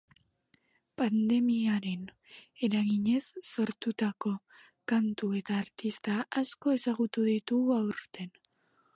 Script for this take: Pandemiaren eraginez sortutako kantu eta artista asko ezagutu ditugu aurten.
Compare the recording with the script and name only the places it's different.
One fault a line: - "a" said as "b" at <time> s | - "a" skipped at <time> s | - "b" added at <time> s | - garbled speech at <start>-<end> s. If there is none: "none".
none